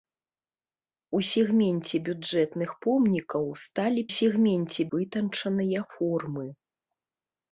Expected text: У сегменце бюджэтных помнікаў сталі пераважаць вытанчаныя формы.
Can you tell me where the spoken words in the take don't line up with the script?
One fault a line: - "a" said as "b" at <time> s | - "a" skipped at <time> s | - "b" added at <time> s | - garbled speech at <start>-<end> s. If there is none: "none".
- "пераважаць" said as "сегменце" at 4.2 s